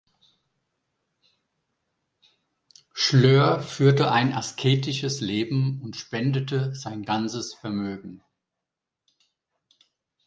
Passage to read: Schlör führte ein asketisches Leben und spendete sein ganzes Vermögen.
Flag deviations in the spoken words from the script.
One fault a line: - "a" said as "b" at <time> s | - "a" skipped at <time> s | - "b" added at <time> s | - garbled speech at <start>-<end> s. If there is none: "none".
none